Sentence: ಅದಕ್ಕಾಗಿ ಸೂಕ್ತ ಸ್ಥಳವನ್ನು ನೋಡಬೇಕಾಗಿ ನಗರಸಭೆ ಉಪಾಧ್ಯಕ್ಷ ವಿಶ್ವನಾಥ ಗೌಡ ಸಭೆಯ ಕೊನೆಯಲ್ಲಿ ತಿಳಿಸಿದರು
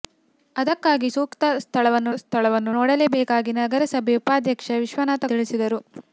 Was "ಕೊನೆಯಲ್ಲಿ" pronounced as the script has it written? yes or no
no